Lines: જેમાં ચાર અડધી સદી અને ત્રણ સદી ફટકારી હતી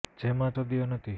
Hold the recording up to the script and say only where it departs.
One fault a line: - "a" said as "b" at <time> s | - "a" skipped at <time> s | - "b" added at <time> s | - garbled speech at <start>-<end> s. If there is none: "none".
- "ચાર અડધી" skipped at 0.6 s
- "ત્રણ સદી ફટકારી" skipped at 1.0 s